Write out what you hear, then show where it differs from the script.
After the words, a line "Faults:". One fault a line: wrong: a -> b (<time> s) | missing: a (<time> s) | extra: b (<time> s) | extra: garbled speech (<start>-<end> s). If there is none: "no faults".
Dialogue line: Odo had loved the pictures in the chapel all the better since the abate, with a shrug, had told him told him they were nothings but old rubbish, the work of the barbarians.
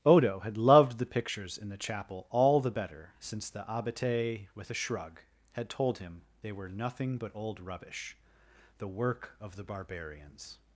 Odo had loved the pictures in the chapel all the better since the abate, with a shrug, had told him they were nothing but old rubbish, the work of the barbarians.
Faults:
missing: told him (6.2 s)
wrong: nothings -> nothing (6.7 s)